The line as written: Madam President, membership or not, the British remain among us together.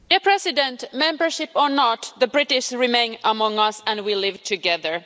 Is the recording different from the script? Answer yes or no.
yes